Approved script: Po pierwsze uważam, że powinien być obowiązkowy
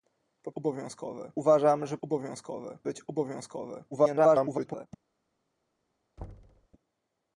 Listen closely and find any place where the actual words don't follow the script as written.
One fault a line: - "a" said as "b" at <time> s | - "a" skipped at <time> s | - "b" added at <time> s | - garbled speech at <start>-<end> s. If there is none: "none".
- "pierwsze" said as "obowiązkowy" at 0.5 s
- "powinien" said as "obowiązkowy" at 2.0 s
- garbled speech at 3.9-4.9 s